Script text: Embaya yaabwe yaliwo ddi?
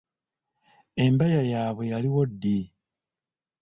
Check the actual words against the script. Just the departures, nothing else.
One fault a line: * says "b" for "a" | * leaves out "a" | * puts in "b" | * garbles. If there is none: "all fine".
all fine